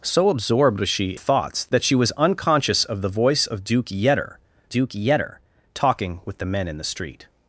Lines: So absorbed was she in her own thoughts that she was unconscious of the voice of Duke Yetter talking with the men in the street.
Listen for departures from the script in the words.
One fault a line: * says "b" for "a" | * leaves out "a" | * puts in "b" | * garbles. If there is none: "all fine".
* leaves out "in her own"
* puts in "Duke Yetter"